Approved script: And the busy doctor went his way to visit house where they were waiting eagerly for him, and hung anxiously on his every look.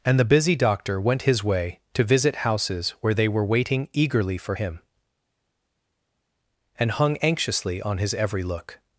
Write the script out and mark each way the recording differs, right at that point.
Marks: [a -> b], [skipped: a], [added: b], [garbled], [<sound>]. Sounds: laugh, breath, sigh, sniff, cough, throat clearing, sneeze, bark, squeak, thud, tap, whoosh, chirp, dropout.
And the busy doctor went his way to visit [house -> houses] where they were waiting eagerly for him, and hung anxiously on his every look.